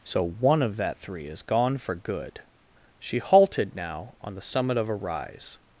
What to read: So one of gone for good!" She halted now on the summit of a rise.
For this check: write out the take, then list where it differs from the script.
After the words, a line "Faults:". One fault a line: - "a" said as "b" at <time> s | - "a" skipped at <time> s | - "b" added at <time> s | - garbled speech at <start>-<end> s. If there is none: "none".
So one of that three is gone for good!" She halted now on the summit of a rise.
Faults:
- "that three is" added at 0.8 s